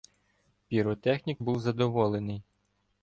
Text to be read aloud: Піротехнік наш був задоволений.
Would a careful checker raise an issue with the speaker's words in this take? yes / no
yes